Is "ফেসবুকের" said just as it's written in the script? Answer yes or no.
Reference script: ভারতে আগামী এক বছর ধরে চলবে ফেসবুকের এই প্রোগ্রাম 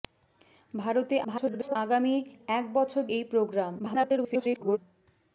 no